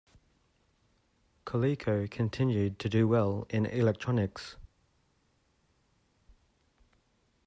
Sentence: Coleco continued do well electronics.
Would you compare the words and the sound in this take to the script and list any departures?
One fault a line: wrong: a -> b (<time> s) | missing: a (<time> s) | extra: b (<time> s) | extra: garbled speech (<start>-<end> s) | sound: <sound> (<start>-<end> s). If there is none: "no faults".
extra: to (2.8 s)
extra: in (3.5 s)